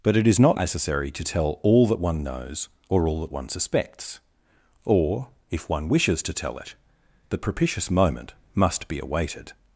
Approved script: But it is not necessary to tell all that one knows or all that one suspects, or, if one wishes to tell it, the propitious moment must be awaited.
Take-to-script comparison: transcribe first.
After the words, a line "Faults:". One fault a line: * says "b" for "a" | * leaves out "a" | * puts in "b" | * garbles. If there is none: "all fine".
But it is not necessary to tell all that one knows or all that one suspects, or, if one wishes to tell it, the propitious moment must be awaited.
Faults:
all fine